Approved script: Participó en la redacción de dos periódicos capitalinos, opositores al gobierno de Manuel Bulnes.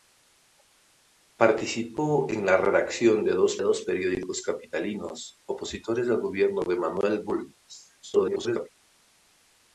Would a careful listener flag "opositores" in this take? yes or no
no